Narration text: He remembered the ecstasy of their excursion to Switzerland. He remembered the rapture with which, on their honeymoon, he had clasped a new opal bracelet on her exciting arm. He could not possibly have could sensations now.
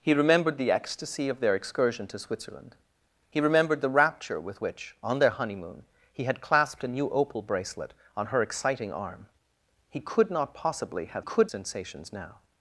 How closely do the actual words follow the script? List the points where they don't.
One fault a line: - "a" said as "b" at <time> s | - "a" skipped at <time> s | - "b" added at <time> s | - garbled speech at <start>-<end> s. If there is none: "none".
none